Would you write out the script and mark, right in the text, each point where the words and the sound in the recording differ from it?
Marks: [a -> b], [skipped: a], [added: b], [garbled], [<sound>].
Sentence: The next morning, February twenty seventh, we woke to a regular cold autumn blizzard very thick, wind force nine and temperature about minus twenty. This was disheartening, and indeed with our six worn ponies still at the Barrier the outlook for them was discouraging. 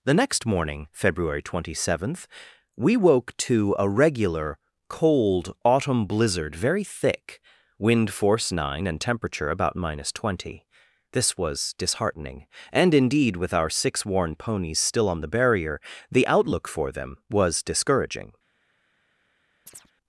The next morning, February twenty seventh, we woke to a regular cold autumn blizzard very thick, wind force nine and temperature about minus twenty. This was disheartening, and indeed with our six worn ponies still [at -> on] the Barrier the outlook for them was discouraging. [chirp]